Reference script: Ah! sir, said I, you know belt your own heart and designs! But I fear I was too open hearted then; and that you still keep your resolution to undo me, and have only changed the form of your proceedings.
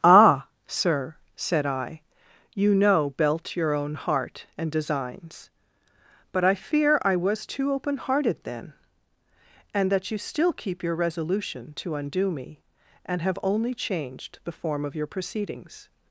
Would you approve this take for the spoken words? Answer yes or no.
yes